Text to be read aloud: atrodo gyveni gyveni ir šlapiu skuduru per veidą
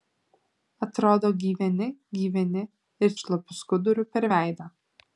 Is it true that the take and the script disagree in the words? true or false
false